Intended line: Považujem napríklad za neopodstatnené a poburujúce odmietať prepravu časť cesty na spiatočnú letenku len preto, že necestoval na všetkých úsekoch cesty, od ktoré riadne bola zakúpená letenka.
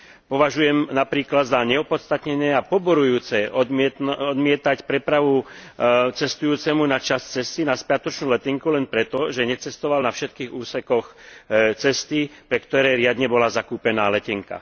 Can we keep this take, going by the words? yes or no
no